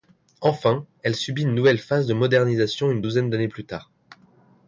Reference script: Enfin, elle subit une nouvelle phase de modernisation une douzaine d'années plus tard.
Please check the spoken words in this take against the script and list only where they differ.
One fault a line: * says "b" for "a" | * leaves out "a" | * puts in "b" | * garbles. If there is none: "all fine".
all fine